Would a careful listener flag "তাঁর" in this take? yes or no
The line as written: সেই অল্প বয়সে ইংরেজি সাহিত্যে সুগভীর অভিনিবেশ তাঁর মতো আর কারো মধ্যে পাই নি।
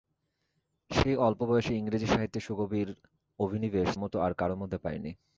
yes